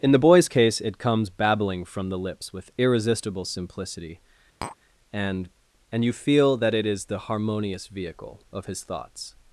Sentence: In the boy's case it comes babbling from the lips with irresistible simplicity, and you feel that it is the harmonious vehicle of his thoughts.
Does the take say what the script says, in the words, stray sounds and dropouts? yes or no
no